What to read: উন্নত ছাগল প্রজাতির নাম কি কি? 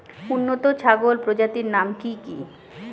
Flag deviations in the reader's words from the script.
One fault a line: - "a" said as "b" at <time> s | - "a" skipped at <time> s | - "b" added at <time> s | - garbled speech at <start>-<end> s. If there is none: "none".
none